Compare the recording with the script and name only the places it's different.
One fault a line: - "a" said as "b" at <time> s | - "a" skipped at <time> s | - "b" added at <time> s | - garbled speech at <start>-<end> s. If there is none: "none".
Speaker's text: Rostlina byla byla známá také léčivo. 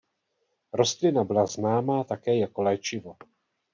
- "byla" skipped at 1.4 s
- "jako" added at 2.4 s